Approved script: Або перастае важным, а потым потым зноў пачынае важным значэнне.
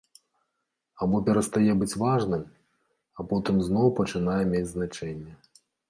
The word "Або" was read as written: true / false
true